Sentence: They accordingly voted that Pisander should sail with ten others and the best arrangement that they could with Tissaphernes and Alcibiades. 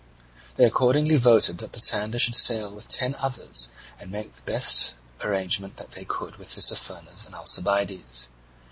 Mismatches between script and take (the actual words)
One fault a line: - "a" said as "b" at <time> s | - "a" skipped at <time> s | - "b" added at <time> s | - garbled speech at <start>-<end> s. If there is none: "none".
- "make" added at 4.1 s